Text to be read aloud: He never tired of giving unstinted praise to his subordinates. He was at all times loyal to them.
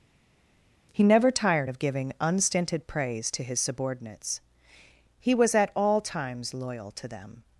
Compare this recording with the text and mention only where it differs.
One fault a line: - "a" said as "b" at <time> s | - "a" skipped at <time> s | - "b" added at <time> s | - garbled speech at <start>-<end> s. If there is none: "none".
none